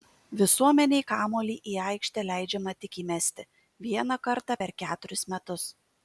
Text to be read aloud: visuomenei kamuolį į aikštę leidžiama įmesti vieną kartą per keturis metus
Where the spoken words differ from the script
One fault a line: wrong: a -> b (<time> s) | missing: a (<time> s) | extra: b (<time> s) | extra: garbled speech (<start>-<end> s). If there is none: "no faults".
extra: tik (2.8 s)